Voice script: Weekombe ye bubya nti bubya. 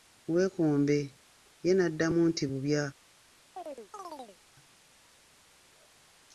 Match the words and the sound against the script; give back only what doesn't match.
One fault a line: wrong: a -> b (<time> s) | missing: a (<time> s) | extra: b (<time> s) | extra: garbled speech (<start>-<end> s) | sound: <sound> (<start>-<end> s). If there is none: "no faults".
wrong: bubya -> n'addamu (1.7 s)
sound: chirp (3.6-4.4 s)